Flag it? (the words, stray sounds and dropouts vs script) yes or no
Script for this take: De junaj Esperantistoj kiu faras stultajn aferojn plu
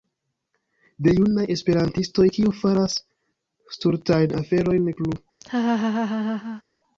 yes